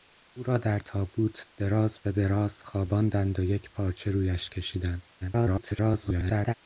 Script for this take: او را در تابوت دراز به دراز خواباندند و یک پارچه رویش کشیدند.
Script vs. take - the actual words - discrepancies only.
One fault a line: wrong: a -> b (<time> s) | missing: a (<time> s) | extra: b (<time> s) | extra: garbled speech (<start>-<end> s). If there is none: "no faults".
extra: garbled speech (5.2-6.5 s)